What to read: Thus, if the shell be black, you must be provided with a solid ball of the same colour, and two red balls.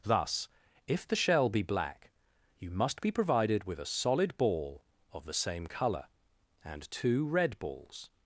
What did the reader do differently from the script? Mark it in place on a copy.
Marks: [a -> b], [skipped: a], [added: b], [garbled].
Thus, if the shell be black, you must be provided with a solid ball of the same colour, and two red balls.